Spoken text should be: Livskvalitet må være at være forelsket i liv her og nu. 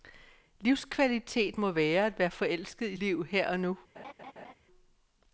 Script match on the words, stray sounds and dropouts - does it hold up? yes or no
no